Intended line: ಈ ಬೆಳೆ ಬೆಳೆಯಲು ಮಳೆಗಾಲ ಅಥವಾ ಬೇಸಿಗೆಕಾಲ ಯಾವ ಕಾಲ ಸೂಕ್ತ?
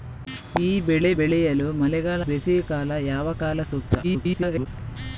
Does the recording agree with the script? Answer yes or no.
no